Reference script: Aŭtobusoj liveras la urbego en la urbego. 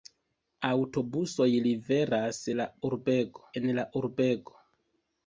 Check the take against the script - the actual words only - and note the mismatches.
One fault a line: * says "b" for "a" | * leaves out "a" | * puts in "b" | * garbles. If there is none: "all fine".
all fine